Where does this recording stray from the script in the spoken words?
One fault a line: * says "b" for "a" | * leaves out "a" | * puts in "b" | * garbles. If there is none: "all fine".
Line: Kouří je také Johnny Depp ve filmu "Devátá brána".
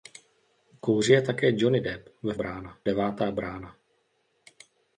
* says "brána" for "filmu"